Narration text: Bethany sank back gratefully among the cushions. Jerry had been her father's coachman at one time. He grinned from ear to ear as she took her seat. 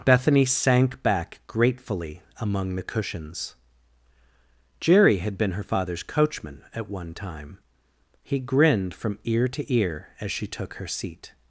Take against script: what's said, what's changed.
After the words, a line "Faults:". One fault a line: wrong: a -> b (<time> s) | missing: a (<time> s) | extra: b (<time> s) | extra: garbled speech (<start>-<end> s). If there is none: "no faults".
Bethany sank back gratefully among the cushions. Jerry had been her father's coachman at one time. He grinned from ear to ear as she took her seat.
Faults:
no faults